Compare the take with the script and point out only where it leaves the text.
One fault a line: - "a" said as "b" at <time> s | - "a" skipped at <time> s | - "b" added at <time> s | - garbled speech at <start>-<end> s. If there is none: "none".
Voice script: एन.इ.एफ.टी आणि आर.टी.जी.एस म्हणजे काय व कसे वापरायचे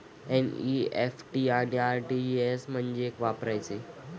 - "काय व कसे" skipped at 3.1 s